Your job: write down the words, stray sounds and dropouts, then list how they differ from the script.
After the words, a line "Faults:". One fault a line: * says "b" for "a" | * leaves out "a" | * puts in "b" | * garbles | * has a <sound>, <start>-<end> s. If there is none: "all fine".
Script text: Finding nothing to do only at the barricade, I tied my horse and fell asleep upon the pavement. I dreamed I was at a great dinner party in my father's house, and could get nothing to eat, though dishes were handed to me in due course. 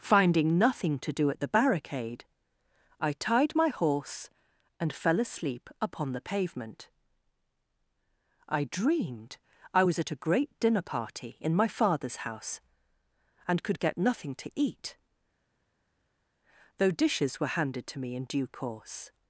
Finding nothing to do at the barricade, I tied my horse and fell asleep upon the pavement. I dreamed I was at a great dinner party in my father's house, and could get nothing to eat, though dishes were handed to me in due course.
Faults:
* leaves out "only"